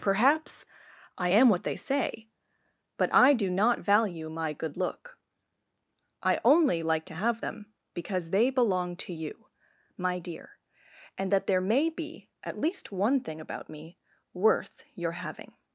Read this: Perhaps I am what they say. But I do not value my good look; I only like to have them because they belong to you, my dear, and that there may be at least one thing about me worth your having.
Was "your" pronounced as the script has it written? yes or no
yes